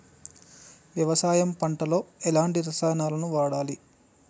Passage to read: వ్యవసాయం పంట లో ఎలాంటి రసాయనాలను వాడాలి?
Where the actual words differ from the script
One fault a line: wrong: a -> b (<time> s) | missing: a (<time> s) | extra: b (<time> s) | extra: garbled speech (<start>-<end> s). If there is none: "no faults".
no faults